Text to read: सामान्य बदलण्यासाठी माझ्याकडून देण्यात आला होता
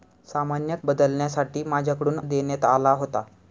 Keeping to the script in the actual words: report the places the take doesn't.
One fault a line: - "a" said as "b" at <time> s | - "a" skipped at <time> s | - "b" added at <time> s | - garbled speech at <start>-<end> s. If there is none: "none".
none